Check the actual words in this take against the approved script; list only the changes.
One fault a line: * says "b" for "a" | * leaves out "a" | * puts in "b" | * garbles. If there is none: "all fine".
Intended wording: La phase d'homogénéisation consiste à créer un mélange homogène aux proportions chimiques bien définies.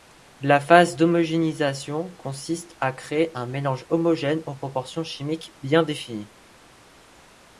all fine